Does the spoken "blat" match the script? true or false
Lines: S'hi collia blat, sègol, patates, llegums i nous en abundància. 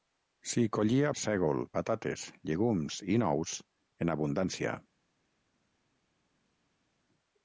false